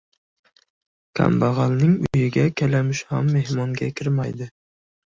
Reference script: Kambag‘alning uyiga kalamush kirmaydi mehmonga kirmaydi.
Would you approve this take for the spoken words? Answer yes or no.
no